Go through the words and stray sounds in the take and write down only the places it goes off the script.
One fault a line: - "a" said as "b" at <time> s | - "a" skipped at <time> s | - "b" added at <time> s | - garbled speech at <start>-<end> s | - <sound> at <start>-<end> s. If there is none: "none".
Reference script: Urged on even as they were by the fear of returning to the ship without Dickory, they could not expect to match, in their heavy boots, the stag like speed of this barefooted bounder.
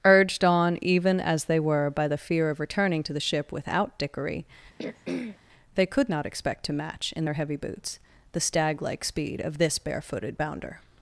- throat clearing at 4.8-5.4 s